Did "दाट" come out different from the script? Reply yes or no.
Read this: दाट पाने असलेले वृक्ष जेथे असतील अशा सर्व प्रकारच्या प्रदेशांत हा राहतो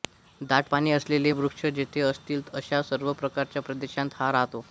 no